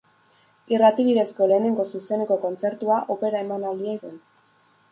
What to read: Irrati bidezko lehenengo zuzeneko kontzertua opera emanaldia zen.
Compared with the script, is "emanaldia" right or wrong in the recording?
right